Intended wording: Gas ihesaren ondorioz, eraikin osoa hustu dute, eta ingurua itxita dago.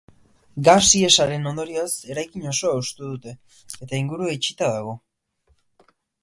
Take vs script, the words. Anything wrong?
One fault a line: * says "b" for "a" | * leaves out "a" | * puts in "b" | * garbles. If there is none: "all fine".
all fine